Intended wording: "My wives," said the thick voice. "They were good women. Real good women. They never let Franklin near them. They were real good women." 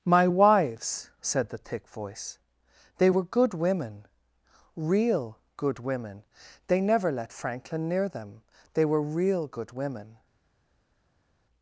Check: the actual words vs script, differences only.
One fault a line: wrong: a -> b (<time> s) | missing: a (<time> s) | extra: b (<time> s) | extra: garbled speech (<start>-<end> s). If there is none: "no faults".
no faults